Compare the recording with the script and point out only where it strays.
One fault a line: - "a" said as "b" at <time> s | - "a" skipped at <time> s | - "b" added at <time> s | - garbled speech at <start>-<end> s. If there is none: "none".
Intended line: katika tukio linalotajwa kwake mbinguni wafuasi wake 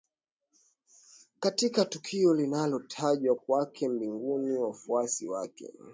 none